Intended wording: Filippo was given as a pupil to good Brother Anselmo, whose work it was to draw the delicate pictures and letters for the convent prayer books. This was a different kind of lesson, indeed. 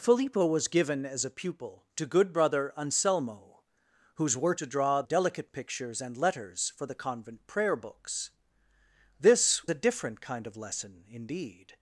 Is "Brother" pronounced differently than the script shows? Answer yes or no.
no